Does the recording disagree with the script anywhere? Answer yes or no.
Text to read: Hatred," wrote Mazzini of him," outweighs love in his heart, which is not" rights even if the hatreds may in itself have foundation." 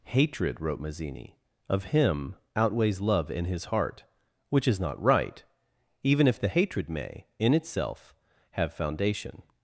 yes